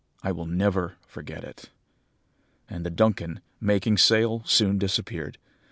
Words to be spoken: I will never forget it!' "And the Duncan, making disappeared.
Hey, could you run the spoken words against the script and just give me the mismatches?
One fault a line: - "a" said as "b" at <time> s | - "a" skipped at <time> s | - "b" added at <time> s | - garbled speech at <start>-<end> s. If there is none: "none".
- "sail soon" added at 4.0 s